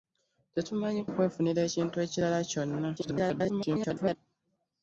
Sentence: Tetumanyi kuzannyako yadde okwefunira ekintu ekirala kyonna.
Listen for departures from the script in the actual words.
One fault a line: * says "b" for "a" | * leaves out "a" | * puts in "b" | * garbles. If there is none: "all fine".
* leaves out "kuzannyako yadde"
* garbles